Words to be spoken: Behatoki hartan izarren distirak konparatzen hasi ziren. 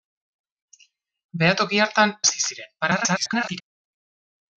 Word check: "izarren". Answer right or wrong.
wrong